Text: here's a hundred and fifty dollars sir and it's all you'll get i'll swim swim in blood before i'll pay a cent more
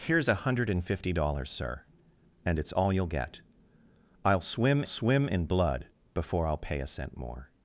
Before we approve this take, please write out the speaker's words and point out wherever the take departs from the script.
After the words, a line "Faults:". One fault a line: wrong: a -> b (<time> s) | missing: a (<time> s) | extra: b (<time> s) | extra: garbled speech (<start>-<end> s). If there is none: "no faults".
here's a hundred and fifty dollars sir and it's all you'll get i'll swim swim in blood before i'll pay a cent more
Faults:
no faults